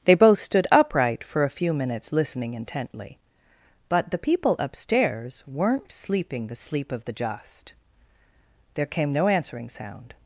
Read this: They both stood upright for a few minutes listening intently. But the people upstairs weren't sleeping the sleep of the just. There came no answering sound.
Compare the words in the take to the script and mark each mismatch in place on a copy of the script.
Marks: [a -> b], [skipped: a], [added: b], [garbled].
They both stood upright for a few minutes listening intently. But the people upstairs weren't sleeping the sleep of the just. There came no answering sound.